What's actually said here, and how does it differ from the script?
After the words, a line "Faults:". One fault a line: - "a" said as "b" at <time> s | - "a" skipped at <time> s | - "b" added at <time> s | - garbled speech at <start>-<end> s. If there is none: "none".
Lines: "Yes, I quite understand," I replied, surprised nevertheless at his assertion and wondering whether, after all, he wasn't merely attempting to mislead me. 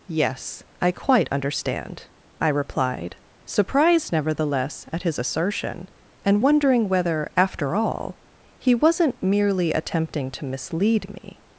"Yes, I quite understand," I replied, surprised nevertheless at his assertion and wondering whether, after all, he wasn't merely attempting to mislead me.
Faults:
none